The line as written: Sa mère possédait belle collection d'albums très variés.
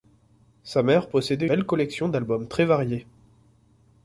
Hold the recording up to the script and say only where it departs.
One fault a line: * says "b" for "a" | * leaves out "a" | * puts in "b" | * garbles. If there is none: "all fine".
all fine